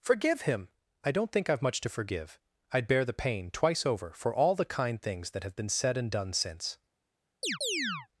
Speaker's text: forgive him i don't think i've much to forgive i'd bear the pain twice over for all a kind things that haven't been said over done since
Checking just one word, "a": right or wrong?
wrong